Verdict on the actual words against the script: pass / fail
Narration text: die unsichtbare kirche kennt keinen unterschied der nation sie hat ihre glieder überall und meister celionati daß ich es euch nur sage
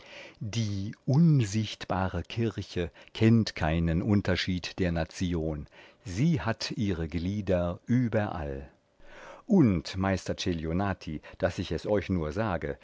pass